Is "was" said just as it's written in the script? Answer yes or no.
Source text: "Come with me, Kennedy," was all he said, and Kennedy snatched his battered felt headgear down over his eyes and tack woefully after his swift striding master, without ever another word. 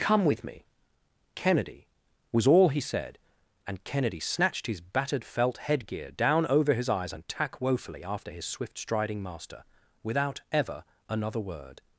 yes